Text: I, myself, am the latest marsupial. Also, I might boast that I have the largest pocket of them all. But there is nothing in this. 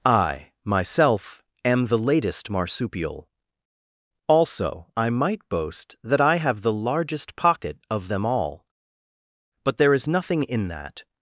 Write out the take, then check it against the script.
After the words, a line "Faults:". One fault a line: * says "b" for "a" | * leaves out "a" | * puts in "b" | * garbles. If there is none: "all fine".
I, myself, am the latest marsupial. Also, I might boast that I have the largest pocket of them all. But there is nothing in that.
Faults:
* says "that" for "this"